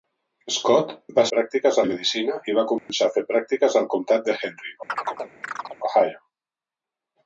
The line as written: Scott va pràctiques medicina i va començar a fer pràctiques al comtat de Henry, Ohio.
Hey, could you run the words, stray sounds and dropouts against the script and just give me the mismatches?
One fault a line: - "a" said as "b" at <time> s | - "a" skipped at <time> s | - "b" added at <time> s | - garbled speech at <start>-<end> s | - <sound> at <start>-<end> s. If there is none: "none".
- dropout at 2.8-2.9 s
- chirp at 4.9-5.8 s